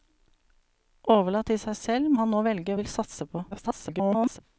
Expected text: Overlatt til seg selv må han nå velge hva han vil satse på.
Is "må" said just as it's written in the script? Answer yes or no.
no